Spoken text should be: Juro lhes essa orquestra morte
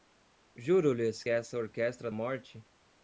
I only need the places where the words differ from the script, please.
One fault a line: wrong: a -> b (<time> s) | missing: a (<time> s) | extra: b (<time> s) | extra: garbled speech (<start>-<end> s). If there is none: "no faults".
no faults